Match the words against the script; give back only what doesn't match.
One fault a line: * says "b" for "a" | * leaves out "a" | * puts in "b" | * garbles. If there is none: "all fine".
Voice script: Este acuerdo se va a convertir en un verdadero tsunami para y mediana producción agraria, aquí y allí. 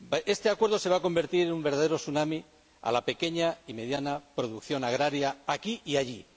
* puts in "la pequeña"